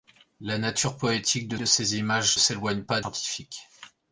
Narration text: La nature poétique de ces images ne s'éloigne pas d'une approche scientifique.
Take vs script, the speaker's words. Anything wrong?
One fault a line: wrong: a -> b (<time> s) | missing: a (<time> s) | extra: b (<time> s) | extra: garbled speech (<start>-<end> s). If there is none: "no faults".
extra: de (1.6 s)
missing: ne (2.4 s)
missing: d'une approche (3.0 s)